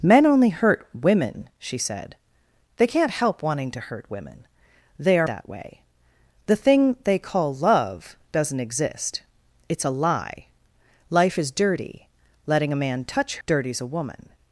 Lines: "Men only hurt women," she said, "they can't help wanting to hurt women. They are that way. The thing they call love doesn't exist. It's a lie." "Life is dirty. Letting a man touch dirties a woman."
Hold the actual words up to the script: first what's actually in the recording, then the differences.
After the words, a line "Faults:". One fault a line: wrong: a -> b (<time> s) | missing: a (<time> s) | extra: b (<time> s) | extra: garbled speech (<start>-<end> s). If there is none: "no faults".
"Men only hurt women," she said, "they can't help wanting to hurt women. They are that way. The thing they call love doesn't exist. It's a lie." "Life is dirty. Letting a man touch dirties a woman."
Faults:
no faults